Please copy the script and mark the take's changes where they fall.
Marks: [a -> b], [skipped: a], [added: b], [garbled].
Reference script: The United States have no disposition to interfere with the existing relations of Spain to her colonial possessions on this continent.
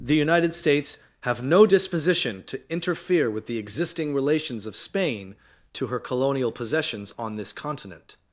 The United States have no disposition to interfere with the existing relations of Spain to her colonial possessions on this continent.